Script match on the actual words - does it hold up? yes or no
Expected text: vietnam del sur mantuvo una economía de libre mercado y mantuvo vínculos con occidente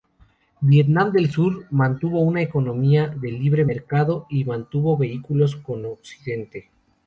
yes